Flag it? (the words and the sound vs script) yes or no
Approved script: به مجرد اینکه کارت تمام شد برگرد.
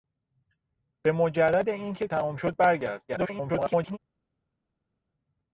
yes